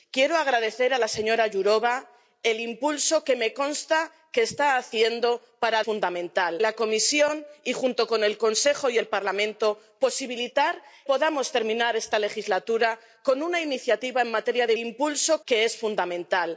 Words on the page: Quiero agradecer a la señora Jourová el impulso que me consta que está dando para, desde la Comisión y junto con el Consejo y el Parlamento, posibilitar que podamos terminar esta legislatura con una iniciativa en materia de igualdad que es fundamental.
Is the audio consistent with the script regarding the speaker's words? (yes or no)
no